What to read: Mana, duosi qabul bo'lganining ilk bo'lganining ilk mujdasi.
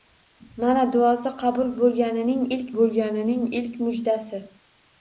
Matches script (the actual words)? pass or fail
pass